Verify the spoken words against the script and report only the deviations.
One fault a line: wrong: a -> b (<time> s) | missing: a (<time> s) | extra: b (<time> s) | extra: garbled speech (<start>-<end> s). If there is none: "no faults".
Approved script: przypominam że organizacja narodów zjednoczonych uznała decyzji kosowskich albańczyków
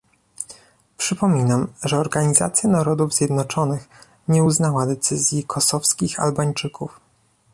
extra: nie (4.3 s)